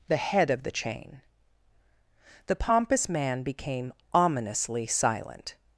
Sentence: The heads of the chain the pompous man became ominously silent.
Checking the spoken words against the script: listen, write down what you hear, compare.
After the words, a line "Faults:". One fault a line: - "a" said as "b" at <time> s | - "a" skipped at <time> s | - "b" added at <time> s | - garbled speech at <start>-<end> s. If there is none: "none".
The head of the chain the pompous man became ominously silent.
Faults:
- "heads" said as "head" at 0.2 s